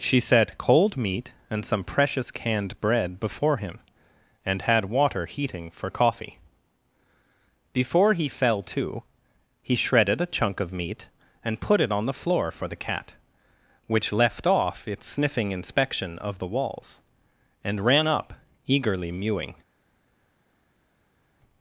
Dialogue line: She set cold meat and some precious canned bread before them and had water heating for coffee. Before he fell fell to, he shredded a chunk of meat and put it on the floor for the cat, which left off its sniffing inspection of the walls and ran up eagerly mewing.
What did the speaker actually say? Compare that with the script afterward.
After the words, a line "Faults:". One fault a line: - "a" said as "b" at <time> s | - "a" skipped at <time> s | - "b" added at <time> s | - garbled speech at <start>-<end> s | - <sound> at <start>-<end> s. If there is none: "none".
She set cold meat and some precious canned bread before him and had water heating for coffee. Before he fell to, he shredded a chunk of meat and put it on the floor for the cat, which left off its sniffing inspection of the walls and ran up eagerly mewing.
Faults:
- "them" said as "him" at 3.6 s
- "fell" skipped at 8.6 s